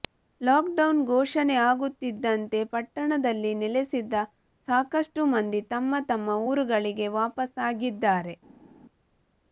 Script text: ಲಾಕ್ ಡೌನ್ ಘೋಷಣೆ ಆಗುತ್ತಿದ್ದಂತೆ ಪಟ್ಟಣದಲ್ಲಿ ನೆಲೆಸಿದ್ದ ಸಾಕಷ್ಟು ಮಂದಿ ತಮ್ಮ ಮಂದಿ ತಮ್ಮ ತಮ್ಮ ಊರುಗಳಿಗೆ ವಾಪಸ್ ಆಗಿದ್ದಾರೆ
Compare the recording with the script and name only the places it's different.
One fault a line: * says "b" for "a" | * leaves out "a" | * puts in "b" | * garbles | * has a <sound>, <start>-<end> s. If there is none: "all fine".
* leaves out "ಮಂದಿ ತಮ್ಮ"